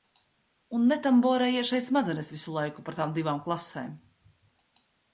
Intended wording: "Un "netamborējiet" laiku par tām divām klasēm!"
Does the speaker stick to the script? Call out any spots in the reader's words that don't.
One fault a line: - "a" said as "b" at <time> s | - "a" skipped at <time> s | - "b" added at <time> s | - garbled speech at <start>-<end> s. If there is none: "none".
- "šeit smadzenes visu" added at 1.7 s